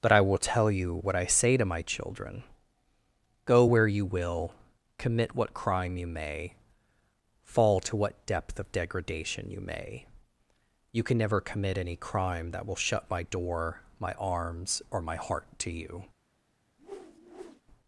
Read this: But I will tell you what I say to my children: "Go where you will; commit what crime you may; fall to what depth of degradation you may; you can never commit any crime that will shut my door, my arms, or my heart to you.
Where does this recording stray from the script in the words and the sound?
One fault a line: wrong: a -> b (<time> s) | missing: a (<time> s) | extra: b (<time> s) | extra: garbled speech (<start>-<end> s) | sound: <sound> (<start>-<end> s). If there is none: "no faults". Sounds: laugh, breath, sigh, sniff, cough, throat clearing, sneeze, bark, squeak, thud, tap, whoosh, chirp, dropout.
sound: whoosh (16.8-17.6 s)